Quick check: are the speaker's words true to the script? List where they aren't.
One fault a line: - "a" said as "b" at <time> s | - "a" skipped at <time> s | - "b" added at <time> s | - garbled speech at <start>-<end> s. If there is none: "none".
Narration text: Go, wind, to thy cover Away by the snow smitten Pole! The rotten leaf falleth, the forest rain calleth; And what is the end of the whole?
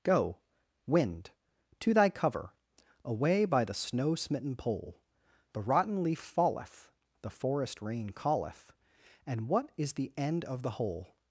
none